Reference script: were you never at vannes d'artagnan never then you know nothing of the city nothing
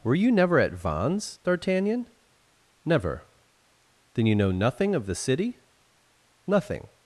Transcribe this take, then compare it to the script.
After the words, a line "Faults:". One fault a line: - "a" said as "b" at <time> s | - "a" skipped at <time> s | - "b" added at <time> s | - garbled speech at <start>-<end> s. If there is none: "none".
were you never at vannes d'artagnan never then you know nothing of the city nothing
Faults:
none